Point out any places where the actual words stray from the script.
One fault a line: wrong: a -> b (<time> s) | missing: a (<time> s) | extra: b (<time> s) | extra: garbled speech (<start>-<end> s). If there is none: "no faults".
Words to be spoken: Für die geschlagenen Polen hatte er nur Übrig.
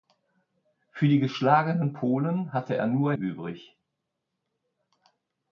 no faults